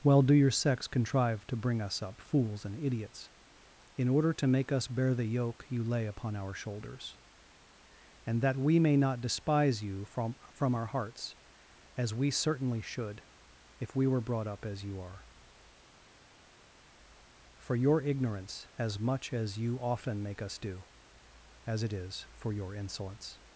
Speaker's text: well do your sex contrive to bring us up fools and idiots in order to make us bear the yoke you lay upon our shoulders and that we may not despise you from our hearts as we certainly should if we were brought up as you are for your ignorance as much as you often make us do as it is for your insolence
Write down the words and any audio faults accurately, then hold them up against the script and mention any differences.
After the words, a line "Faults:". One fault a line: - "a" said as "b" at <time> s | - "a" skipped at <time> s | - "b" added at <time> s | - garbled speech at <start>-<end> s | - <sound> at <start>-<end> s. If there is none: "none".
well do your sex contrive to bring us up fools and idiots in order to make us bear the yoke you lay upon our shoulders and that we may not despise you from from our hearts as we certainly should if we were brought up as you are for your ignorance as much as you often make us do as it is for your insolence
Faults:
- "from" added at 10.5 s